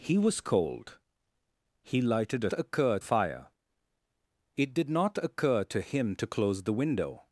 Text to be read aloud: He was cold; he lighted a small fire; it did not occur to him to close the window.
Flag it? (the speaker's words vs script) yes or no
yes